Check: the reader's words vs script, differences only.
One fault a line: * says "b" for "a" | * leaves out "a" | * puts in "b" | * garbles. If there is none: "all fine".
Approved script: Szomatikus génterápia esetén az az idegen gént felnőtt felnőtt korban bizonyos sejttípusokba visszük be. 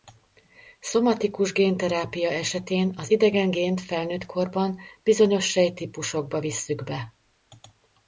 * leaves out "az"
* leaves out "felnőtt"